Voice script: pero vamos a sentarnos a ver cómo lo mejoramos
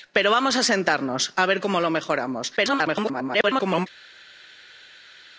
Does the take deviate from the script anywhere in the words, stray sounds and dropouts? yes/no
yes